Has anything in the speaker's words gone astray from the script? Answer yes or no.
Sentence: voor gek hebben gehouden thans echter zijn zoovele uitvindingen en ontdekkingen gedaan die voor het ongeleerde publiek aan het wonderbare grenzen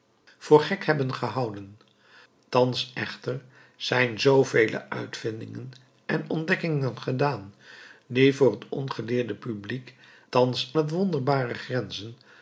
yes